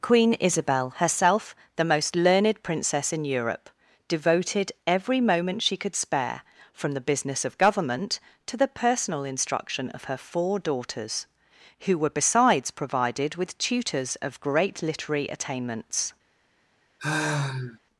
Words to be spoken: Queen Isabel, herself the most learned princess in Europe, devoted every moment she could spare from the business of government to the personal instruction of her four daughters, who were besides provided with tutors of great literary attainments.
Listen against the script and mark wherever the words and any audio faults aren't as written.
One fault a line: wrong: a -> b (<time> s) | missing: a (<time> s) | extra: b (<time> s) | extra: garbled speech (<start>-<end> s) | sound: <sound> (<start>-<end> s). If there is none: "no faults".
sound: sigh (17.0-17.8 s)